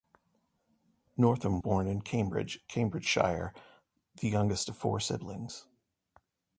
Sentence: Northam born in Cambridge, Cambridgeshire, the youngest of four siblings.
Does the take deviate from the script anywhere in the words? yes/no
no